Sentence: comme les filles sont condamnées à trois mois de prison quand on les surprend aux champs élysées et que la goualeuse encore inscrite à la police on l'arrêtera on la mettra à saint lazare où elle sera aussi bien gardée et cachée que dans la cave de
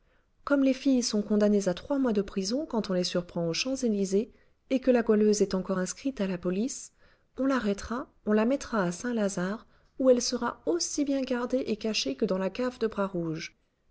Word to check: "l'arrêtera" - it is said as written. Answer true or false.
true